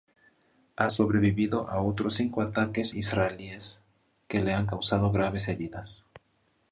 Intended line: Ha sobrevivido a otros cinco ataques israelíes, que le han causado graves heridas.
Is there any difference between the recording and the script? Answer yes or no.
no